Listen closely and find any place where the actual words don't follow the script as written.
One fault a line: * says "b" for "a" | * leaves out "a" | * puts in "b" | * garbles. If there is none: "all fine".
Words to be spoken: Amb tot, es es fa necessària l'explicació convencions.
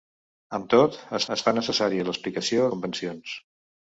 all fine